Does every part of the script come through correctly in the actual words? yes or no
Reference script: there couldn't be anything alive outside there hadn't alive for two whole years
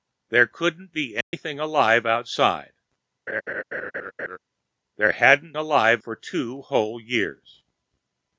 yes